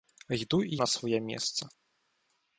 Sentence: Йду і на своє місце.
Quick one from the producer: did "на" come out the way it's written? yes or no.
yes